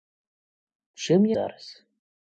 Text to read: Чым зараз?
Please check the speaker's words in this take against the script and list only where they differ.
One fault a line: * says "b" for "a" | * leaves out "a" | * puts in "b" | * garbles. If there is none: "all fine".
all fine